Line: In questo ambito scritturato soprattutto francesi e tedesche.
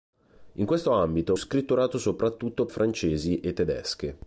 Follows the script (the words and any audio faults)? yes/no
yes